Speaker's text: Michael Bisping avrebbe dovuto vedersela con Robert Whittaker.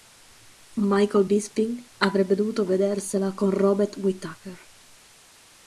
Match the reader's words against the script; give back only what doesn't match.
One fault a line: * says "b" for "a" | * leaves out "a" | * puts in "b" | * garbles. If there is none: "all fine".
all fine